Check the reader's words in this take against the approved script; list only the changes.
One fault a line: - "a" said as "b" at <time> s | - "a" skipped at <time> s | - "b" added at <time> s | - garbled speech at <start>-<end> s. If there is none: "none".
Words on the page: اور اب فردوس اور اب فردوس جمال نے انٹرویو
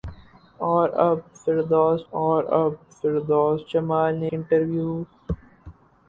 none